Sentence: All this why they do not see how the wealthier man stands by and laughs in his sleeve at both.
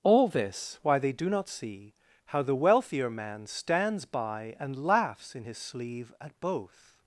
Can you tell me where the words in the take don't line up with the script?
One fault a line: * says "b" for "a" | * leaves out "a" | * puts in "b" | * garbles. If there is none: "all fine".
all fine